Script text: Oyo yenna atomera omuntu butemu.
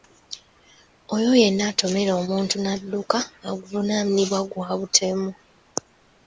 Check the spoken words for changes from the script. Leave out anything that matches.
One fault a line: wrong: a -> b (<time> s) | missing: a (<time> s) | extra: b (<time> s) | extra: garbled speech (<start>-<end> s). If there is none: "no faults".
extra: n'adduka avunaanibwa gwa (2.6 s)